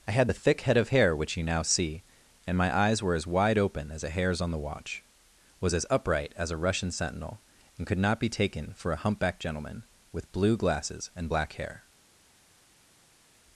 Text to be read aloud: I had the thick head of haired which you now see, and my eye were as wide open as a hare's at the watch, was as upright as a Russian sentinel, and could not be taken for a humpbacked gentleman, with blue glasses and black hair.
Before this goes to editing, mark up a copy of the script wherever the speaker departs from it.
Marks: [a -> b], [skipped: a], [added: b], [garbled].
I had the thick head of [haired -> hair] which you now see, and my [eye -> eyes] were as wide open as a hare's [at -> on] the watch, was as upright as a Russian sentinel, and could not be taken for a humpbacked gentleman, with blue glasses and black hair.